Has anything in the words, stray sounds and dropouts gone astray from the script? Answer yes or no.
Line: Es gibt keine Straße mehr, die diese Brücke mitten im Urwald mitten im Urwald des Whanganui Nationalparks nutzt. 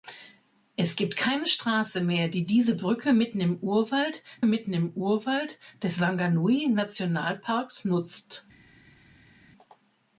no